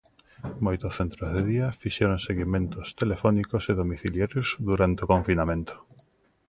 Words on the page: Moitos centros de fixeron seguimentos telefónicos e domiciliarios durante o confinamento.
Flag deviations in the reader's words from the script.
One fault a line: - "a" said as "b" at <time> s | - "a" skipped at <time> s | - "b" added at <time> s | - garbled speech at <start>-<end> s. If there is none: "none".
- "día" added at 1.5 s